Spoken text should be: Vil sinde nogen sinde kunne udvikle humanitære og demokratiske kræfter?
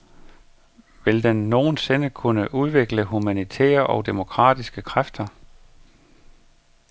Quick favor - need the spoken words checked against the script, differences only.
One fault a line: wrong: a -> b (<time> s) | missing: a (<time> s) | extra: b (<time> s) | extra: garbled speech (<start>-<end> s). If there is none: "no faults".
wrong: sinde -> den (1.2 s)